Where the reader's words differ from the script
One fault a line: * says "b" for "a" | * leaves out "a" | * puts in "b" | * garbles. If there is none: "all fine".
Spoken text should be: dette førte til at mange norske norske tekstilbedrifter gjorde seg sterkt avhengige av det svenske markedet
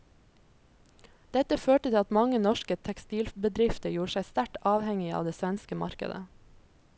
* leaves out "norske"